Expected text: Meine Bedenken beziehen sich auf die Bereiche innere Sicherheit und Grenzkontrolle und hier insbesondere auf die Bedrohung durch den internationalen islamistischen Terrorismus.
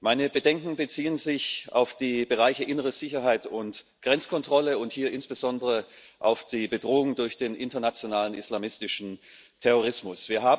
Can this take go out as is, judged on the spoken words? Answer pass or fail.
pass